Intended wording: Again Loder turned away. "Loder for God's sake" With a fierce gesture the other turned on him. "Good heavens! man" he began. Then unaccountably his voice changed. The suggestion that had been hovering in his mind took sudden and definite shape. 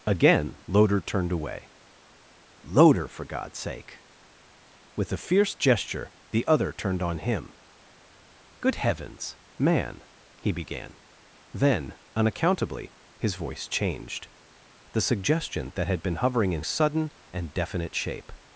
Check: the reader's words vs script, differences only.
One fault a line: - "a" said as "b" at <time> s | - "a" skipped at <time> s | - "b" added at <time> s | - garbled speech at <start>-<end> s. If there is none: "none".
- "his mind took" skipped at 16.6 s